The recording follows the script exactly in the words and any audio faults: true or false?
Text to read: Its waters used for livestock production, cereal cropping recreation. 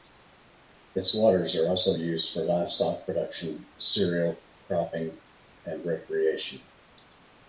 false